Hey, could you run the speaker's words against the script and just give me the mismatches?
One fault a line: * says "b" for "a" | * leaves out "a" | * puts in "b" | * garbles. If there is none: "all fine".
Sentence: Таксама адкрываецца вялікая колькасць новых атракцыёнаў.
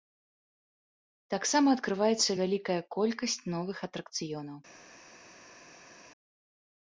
all fine